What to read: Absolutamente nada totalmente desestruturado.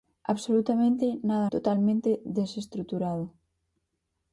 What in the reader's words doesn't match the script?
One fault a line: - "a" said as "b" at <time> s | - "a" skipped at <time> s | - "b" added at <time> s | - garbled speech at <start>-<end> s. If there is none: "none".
none